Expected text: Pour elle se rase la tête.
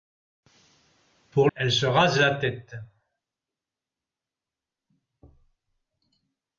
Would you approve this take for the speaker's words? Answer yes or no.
yes